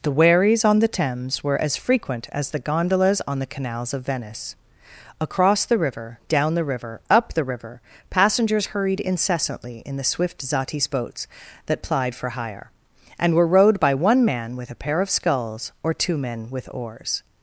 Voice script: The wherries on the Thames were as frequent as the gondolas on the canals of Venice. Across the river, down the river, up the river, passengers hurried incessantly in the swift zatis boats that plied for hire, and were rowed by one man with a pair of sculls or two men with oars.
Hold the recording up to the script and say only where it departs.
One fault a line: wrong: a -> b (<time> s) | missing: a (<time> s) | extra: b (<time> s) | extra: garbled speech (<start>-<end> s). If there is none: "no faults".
no faults